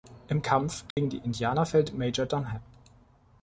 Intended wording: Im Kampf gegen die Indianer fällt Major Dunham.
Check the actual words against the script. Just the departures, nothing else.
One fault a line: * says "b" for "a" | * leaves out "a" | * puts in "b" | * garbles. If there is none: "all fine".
all fine